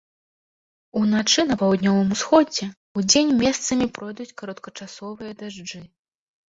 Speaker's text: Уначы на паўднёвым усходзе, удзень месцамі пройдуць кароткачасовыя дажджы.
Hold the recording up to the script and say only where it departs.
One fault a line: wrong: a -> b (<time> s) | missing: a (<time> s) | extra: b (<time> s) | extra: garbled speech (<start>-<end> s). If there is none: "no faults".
no faults